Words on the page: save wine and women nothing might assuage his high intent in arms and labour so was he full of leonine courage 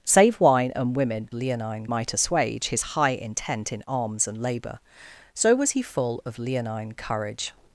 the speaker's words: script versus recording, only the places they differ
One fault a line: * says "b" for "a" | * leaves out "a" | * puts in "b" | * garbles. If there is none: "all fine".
* says "leonine" for "nothing"